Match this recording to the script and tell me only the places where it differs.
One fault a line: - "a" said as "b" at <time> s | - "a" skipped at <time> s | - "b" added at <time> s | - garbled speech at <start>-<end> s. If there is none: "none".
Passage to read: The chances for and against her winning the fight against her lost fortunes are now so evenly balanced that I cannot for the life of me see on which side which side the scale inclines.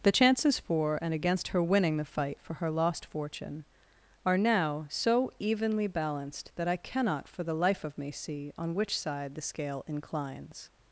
- "against" said as "for" at 2.4 s
- "fortunes" said as "fortune" at 3.1 s
- "which side" skipped at 9.3 s